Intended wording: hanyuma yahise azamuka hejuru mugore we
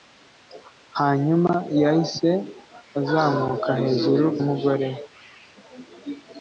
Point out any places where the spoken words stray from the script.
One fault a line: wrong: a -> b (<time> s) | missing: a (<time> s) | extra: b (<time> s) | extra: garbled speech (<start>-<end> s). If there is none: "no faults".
no faults